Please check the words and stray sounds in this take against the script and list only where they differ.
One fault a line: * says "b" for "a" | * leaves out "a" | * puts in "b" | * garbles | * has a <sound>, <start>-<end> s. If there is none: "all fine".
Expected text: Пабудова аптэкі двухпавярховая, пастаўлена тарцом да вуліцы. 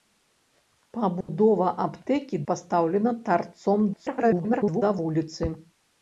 * has a dropout, 1.2-1.3 s
* leaves out "двухпавярховая"
* garbles